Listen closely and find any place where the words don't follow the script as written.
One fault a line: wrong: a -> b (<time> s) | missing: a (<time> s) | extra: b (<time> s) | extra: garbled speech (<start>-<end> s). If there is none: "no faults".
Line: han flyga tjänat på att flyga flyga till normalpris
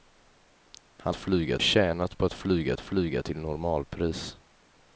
no faults